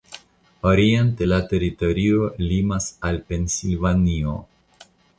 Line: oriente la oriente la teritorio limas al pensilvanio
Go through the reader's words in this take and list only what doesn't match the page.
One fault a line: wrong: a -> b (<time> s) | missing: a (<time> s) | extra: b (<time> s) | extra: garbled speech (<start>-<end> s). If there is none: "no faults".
missing: oriente la (1.4 s)